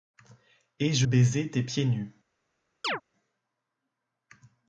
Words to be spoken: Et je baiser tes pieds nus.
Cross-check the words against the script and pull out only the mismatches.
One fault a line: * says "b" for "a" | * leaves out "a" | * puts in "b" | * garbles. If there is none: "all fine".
all fine